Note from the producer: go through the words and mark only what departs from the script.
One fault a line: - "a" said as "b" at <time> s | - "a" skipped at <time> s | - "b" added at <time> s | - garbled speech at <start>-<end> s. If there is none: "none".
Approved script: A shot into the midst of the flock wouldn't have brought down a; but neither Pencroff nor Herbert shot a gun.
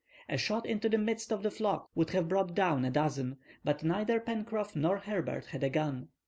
- "wouldn't" said as "would" at 1.9 s
- "dozen" added at 2.9 s
- "shot" said as "had" at 5.5 s